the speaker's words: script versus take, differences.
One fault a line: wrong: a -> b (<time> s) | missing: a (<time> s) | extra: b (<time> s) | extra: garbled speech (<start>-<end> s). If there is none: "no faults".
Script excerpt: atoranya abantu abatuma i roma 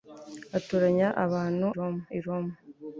wrong: abatuma -> roma (1.8 s)